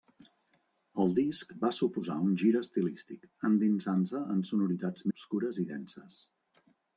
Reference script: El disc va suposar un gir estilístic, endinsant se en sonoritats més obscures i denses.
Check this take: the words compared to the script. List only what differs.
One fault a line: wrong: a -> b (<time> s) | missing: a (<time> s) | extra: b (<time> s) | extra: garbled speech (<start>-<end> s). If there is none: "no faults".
missing: més (5.1 s)